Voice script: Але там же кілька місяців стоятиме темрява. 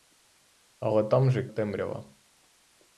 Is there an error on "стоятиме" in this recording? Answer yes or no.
yes